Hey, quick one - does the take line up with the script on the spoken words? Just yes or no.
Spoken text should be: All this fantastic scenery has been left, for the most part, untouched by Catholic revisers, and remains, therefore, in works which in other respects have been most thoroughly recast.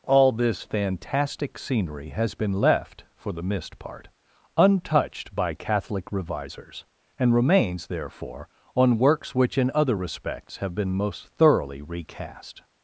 no